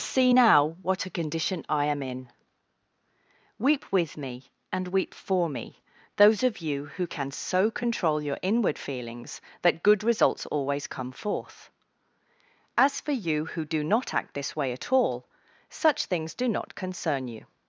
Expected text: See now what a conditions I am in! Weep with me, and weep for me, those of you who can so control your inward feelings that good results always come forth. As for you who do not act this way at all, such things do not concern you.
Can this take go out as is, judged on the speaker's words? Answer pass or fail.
fail